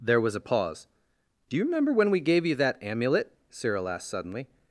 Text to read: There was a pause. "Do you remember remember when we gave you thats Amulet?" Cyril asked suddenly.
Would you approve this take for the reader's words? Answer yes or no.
no